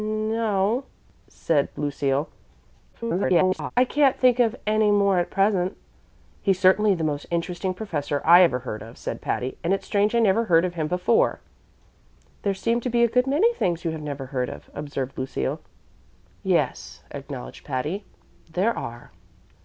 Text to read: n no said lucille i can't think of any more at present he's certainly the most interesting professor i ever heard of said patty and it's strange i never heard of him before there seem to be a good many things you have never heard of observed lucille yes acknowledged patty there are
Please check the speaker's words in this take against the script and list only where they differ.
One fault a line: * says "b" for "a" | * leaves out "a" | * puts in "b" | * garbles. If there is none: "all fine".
* garbles